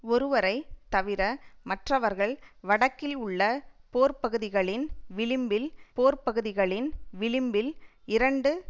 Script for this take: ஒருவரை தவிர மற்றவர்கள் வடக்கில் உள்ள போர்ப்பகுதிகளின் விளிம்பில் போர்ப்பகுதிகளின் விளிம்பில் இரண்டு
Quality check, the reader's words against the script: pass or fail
pass